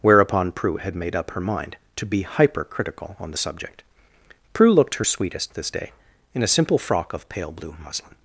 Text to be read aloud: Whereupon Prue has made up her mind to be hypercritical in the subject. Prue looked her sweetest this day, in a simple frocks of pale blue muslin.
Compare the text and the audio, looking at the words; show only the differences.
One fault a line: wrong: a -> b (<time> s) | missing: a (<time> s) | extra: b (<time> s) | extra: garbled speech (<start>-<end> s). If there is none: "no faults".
wrong: has -> had (0.8 s)
wrong: in -> on (3.2 s)
wrong: frocks -> frock (6.8 s)